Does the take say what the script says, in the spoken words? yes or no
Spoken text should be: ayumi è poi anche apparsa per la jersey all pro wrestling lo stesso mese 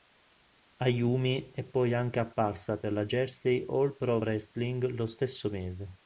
yes